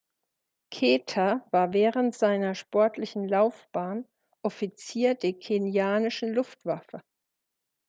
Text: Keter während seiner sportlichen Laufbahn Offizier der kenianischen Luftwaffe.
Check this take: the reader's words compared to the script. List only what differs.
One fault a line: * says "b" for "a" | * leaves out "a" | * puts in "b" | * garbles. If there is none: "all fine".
* puts in "war"